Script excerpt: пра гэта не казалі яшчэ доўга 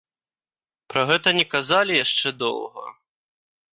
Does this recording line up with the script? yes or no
yes